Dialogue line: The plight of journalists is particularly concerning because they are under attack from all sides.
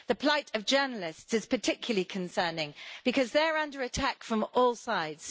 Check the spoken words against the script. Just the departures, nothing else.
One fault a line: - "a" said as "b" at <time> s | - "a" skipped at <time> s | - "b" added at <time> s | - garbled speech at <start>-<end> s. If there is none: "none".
none